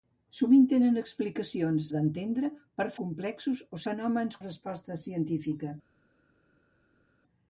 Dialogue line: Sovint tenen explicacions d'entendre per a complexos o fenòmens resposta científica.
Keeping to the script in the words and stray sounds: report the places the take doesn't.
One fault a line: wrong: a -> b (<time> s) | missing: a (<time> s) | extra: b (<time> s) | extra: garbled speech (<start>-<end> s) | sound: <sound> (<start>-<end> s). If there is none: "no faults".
no faults